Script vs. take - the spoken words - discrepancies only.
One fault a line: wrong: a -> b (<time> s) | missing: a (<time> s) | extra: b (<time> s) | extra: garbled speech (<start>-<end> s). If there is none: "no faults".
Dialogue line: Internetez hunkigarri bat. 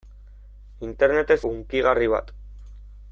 no faults